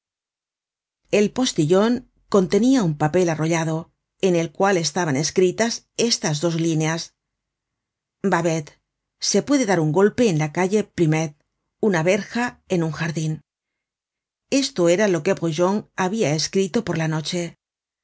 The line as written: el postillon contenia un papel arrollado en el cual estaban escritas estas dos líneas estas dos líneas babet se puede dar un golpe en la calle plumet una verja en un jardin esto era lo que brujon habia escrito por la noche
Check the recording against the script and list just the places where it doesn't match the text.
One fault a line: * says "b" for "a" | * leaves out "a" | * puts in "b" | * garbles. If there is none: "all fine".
* leaves out "estas dos líneas"